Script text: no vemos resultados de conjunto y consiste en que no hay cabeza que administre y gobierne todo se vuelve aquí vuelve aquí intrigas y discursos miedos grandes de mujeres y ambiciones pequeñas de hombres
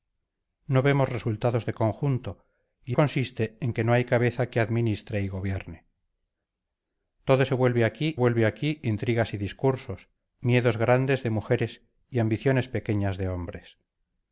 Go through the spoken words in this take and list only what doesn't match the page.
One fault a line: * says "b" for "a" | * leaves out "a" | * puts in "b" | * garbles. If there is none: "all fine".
all fine